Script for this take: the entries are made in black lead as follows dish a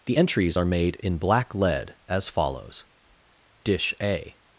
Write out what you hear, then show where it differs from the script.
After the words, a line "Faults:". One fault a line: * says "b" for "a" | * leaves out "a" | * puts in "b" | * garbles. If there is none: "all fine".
the entries are made in black lead as follows dish a
Faults:
all fine